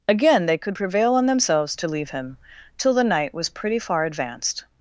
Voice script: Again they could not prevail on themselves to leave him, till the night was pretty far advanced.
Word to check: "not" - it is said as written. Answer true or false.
false